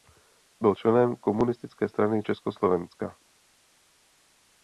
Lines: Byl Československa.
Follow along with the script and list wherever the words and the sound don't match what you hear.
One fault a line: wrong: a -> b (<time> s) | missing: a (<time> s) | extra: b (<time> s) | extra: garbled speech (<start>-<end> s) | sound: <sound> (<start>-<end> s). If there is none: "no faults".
extra: členem Komunistické strany (0.8 s)